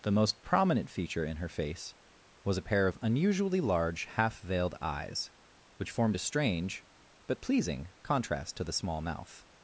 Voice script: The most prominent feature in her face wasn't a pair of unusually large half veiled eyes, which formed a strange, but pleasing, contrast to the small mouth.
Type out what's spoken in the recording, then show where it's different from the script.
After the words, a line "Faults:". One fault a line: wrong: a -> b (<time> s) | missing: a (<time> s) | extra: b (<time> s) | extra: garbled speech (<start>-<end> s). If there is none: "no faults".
The most prominent feature in her face was a pair of unusually large half veiled eyes, which formed a strange, but pleasing, contrast to the small mouth.
Faults:
wrong: wasn't -> was (2.4 s)